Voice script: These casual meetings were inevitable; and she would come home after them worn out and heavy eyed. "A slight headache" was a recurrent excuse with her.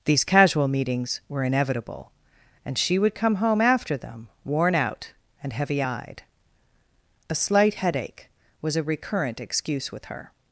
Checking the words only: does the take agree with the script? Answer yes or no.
yes